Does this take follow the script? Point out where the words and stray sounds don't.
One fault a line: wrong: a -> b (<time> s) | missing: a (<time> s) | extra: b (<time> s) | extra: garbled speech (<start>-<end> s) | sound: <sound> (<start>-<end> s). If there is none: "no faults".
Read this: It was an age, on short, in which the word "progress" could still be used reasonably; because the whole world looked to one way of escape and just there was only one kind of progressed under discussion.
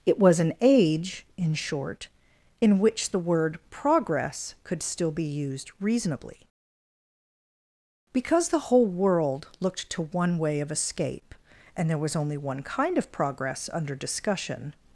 wrong: on -> in (1.4 s)
missing: just (11.9 s)
wrong: progressed -> progress (13.1 s)